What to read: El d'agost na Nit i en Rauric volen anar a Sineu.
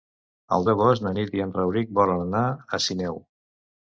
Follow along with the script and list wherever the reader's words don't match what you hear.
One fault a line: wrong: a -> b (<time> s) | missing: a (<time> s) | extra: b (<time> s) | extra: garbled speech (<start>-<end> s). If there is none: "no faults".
no faults